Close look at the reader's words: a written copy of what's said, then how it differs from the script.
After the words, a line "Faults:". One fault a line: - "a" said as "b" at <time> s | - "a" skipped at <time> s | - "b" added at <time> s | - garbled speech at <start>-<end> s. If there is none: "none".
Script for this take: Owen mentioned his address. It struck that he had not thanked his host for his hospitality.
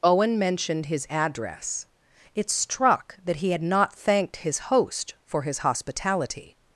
Owen mentioned his address. It struck that he had not thanked his host for his hospitality.
Faults:
none